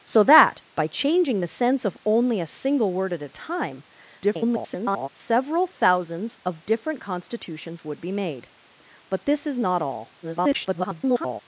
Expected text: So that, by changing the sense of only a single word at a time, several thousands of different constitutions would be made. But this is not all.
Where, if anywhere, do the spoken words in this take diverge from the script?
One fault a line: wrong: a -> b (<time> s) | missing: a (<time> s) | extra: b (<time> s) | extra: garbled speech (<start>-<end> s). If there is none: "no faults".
extra: garbled speech (4.2-5.1 s)
extra: garbled speech (10.2-11.4 s)